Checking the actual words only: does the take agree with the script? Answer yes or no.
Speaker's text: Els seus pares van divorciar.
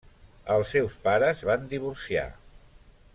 yes